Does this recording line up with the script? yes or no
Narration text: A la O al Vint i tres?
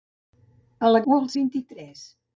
yes